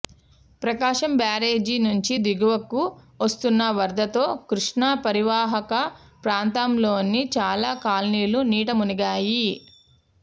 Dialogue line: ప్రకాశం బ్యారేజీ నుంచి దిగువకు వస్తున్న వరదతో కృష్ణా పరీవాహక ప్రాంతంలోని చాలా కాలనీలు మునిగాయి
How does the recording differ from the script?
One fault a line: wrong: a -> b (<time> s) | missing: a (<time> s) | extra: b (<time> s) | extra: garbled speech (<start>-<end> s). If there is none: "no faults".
extra: నీట (8.5 s)